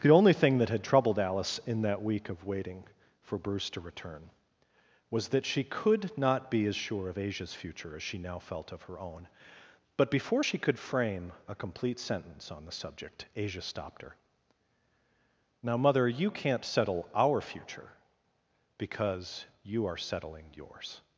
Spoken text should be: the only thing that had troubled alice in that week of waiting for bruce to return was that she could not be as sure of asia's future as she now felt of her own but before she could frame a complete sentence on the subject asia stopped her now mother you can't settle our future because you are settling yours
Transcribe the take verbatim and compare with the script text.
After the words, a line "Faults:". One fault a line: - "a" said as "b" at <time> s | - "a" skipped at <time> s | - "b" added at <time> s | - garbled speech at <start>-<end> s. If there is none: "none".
the only thing that had troubled alice in that week of waiting for bruce to return was that she could not be as sure of asia's future as she now felt of her own but before she could frame a complete sentence on the subject asia stopped her now mother you can't settle our future because you are settling yours
Faults:
none